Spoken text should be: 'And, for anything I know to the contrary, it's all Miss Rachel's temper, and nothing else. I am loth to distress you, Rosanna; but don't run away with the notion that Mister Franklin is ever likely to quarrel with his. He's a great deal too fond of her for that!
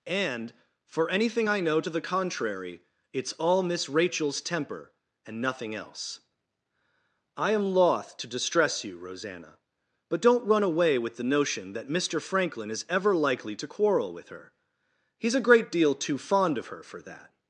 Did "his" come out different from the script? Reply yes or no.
yes